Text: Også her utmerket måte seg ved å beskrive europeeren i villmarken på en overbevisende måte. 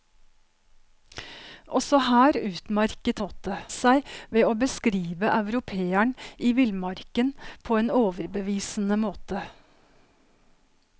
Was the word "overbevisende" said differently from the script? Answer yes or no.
no